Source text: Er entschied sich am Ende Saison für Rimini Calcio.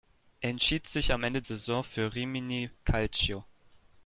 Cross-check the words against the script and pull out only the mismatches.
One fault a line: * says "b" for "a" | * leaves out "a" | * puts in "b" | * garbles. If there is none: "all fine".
all fine